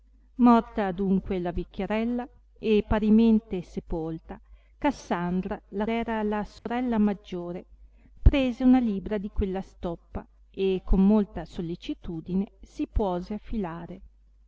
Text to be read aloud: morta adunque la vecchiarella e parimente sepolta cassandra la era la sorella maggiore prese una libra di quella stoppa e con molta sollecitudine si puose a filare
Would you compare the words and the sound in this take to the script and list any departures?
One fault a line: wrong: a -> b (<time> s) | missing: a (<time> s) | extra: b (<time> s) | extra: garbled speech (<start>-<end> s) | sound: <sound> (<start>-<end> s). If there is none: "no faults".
sound: dropout (6.6-6.7 s)